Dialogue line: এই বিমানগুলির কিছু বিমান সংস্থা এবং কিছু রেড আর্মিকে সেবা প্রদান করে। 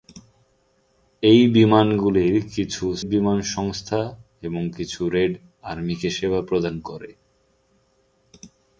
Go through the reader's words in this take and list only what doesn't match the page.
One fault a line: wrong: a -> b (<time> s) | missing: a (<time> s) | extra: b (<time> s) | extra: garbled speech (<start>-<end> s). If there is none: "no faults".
no faults